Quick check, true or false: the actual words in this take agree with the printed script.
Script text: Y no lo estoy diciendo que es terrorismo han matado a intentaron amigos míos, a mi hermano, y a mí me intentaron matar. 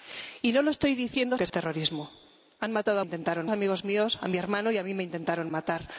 true